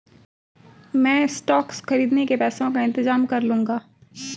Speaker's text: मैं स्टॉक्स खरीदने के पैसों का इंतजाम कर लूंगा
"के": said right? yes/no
yes